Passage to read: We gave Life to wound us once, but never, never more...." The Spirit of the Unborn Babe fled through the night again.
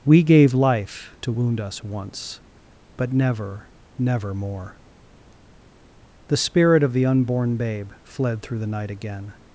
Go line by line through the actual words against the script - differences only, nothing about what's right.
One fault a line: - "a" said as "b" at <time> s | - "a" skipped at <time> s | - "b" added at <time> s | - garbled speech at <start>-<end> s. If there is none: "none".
none